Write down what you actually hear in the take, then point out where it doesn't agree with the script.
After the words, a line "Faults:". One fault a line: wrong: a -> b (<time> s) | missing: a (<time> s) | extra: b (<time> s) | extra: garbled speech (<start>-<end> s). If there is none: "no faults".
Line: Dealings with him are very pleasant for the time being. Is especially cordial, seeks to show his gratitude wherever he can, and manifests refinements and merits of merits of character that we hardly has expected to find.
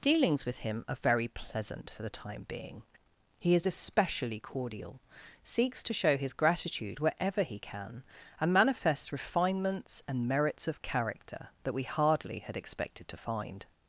Dealings with him are very pleasant for the time being. He is especially cordial, seeks to show his gratitude wherever he can, and manifests refinements and merits of character that we hardly had expected to find.
Faults:
extra: He (3.4 s)
missing: merits of (10.8 s)
wrong: has -> had (12.4 s)